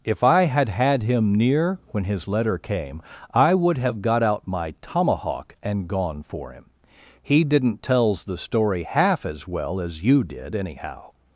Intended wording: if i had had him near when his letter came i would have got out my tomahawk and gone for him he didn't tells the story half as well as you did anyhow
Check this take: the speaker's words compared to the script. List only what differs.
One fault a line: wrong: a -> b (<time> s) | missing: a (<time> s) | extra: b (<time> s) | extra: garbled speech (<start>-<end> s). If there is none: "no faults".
no faults